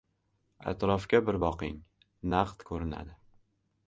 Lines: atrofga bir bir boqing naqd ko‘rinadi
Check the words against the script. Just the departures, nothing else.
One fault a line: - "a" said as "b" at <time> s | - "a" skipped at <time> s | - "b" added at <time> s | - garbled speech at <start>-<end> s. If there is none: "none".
- "bir" skipped at 1.4 s